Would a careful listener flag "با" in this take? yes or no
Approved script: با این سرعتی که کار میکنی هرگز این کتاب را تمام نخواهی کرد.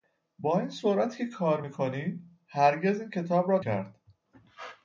no